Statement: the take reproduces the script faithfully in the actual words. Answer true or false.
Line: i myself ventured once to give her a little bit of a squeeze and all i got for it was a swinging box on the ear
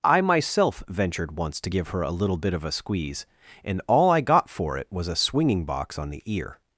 true